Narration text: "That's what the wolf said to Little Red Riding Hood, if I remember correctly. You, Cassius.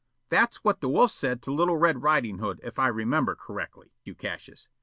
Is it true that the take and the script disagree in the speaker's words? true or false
false